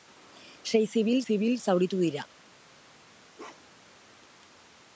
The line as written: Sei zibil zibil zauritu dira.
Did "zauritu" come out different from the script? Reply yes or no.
no